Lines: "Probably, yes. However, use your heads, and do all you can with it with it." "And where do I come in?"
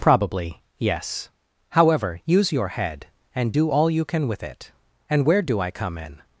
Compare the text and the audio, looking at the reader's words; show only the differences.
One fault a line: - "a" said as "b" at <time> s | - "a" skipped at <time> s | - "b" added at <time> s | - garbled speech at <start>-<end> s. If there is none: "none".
- "heads" said as "head" at 2.7 s
- "with it" skipped at 4.7 s